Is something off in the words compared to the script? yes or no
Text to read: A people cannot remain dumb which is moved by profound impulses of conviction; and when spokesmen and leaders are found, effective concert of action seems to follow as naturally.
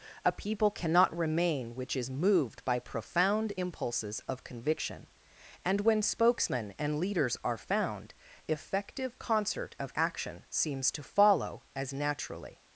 yes